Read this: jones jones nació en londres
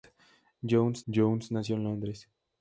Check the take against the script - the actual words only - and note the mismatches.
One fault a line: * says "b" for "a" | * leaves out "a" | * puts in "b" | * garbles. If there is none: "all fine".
all fine